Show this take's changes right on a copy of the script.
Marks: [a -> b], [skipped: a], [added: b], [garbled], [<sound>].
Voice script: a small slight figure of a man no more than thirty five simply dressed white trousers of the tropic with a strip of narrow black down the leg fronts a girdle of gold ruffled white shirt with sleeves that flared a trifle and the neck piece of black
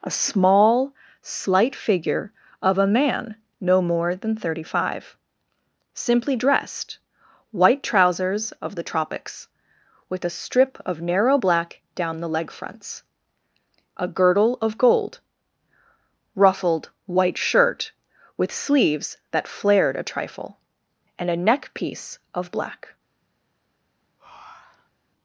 a small slight figure of a man no more than thirty five simply dressed white trousers of the [tropic -> tropics] with a strip of narrow black down the leg fronts a girdle of gold ruffled white shirt with sleeves that flared a trifle and [the -> a] neck piece of black [breath]